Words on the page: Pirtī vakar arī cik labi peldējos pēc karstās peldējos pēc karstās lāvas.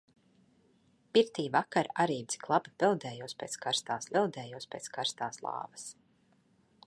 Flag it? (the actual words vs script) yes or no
no